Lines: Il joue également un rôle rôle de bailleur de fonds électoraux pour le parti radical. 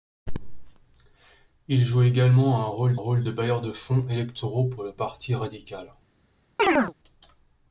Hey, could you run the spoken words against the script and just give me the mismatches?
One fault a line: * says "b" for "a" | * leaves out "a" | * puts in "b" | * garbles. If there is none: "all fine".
all fine